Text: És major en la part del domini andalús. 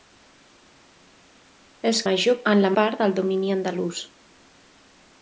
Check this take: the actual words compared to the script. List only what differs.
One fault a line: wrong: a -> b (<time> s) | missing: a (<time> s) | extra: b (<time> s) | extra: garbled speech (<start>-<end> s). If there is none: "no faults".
no faults